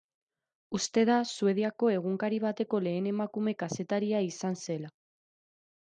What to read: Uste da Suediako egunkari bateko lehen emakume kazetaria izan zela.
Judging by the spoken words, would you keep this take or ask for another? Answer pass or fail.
pass